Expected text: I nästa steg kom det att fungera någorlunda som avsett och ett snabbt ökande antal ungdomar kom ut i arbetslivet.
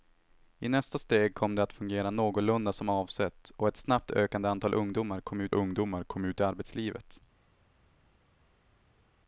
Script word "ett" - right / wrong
right